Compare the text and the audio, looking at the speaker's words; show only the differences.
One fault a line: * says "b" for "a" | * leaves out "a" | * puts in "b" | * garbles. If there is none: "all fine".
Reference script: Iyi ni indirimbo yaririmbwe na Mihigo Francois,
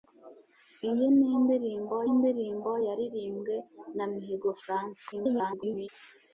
* puts in "indirimbo"
* garbles